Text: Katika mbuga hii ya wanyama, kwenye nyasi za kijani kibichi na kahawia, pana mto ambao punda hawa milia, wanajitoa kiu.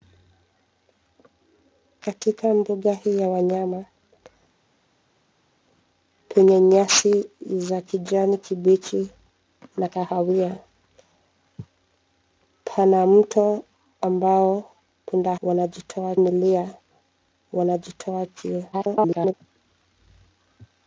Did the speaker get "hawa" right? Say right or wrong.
wrong